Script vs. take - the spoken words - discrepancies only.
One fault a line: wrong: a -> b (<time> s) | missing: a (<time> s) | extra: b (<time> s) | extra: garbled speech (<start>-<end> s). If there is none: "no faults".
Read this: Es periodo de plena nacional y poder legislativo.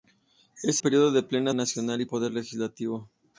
no faults